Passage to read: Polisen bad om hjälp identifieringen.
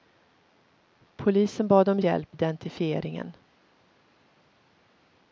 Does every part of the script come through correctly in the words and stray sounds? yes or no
yes